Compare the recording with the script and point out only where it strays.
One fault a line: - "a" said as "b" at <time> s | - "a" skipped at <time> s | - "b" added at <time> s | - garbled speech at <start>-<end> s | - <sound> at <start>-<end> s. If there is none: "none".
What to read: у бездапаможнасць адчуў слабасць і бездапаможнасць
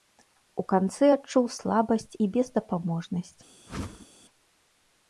- "бездапаможнасць" said as "канцы" at 0.7 s
- whoosh at 3.7-4.1 s